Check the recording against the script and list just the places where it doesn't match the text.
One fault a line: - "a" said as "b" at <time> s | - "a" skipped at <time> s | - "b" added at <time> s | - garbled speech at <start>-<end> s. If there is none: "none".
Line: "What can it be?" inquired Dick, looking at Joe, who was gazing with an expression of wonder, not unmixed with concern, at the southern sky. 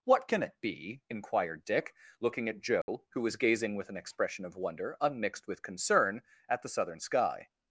- "not" skipped at 5.0 s